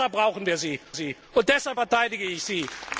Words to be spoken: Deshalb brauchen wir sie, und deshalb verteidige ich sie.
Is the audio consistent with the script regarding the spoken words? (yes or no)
no